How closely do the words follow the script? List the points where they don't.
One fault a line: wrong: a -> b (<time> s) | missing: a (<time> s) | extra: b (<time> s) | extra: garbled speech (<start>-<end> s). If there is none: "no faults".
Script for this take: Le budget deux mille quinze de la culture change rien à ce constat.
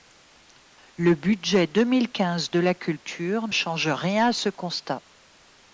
no faults